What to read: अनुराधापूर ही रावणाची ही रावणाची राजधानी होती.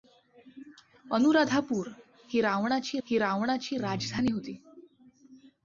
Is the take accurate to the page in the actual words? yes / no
yes